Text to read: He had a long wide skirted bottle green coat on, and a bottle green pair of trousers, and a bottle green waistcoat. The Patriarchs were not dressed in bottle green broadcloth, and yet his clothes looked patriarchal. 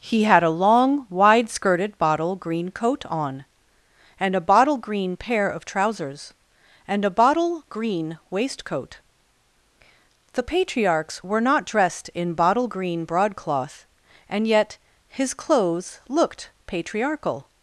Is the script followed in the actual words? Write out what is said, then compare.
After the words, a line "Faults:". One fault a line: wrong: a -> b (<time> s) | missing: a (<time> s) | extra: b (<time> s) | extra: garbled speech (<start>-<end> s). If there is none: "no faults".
He had a long wide skirted bottle green coat on, and a bottle green pair of trousers, and a bottle green waistcoat. The Patriarchs were not dressed in bottle green broadcloth, and yet his clothes looked patriarchal.
Faults:
no faults